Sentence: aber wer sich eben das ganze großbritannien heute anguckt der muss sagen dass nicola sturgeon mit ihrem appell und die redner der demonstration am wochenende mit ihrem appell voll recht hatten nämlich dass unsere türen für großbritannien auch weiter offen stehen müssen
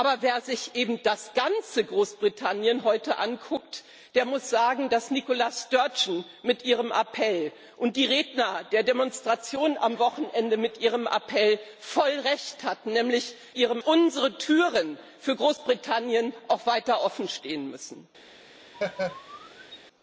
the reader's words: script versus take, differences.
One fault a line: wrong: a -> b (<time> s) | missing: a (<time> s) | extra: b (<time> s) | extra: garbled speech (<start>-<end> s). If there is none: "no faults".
wrong: dass -> ihrem (13.6 s)